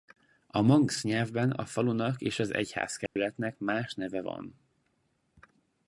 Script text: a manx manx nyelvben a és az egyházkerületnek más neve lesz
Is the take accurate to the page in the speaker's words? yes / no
no